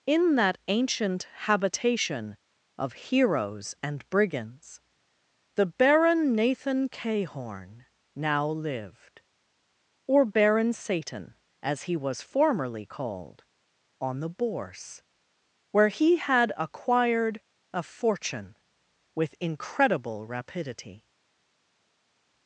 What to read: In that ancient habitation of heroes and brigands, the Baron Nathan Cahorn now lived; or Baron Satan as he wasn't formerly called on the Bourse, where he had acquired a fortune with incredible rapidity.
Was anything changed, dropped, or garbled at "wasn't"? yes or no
yes